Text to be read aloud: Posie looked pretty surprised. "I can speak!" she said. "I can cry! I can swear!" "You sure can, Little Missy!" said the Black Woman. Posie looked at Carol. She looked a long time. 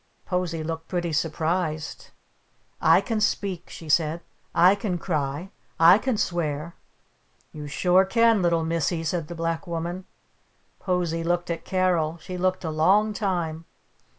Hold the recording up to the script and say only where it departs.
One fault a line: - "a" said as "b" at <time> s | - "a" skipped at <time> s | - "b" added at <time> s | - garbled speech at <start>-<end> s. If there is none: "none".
none